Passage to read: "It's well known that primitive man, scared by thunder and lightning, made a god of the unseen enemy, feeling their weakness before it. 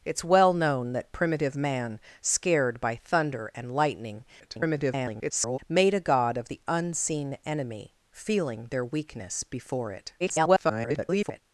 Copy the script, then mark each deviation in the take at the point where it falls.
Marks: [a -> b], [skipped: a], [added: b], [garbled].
"It's well known that primitive man, scared by thunder and lightning, [garbled] made a god of the unseen enemy, feeling their weakness before it. [garbled]